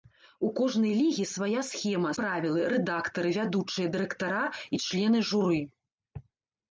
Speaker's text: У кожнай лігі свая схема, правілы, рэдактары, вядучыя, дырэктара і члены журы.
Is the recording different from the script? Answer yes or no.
no